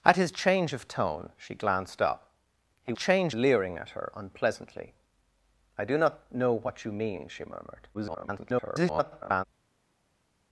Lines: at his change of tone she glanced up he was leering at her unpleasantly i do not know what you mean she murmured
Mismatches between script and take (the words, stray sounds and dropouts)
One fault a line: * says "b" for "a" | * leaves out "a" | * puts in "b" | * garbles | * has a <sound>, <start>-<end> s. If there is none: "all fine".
* says "change" for "was"
* garbles